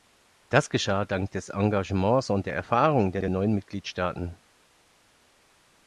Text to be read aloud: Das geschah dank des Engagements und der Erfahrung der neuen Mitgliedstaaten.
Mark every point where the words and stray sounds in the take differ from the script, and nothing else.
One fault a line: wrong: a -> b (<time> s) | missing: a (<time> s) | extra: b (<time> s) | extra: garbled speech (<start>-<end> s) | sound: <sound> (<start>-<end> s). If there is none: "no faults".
extra: der (3.2 s)